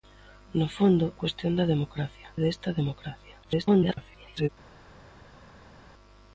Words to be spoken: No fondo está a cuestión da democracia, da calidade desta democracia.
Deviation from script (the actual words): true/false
true